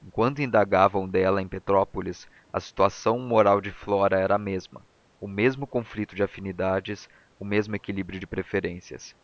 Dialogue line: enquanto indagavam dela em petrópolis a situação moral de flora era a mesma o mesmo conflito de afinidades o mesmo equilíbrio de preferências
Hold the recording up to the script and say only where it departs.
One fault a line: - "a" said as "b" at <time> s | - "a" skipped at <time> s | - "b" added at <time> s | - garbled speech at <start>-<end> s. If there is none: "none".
none